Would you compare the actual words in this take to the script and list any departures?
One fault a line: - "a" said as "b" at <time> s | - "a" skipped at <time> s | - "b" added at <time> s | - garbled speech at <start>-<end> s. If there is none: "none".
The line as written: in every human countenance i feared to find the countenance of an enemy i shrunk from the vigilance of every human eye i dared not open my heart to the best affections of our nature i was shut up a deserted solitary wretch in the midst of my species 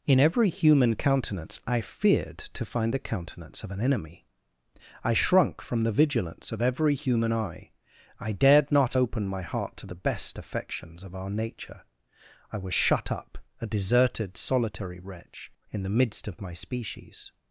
none